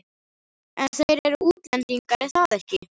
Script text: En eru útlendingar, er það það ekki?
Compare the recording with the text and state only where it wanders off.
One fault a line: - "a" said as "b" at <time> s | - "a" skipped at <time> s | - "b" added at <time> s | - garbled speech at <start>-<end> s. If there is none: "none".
- "þeir" added at 1.0 s
- "það" skipped at 2.6 s